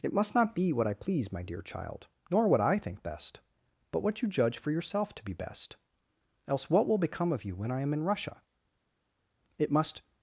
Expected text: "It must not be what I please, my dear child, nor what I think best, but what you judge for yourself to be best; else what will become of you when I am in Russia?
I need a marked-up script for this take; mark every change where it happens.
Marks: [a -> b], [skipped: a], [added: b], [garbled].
"It must not be what I please, my dear child, nor what I think best, but what you judge for yourself to be best; else what will become of you when I am in Russia? [added: It must]